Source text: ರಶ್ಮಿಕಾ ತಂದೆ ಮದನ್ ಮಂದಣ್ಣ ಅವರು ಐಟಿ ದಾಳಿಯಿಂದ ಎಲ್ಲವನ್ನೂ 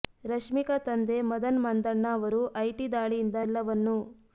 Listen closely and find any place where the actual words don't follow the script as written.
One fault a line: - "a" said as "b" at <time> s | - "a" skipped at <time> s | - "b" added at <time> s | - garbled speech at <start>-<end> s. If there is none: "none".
none